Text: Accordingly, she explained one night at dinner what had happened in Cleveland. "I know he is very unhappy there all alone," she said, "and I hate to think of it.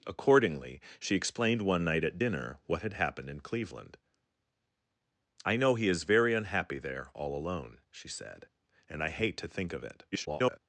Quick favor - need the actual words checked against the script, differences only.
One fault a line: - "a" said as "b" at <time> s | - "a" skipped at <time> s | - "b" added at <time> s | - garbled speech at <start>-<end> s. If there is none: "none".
- garbled speech at 10.1-10.6 s